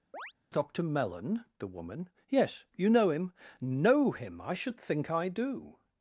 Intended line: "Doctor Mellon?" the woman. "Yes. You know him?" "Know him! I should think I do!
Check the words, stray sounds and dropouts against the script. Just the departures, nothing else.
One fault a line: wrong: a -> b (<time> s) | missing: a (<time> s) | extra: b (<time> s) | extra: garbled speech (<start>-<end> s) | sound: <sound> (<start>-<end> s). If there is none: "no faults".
sound: chirp (0.1-0.3 s)